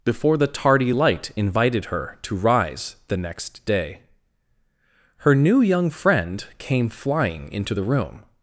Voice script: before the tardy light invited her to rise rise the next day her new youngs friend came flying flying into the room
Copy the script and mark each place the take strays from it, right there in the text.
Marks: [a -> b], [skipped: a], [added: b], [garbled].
before the tardy light invited her to rise [skipped: rise] the next day her new [youngs -> young] friend came flying [skipped: flying] into the room